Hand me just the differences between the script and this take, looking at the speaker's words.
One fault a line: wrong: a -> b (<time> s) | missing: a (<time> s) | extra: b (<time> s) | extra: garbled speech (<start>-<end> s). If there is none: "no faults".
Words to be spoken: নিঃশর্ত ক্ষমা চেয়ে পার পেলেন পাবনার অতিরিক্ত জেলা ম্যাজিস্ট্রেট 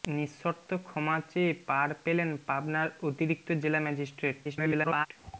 extra: garbled speech (4.4-5.1 s)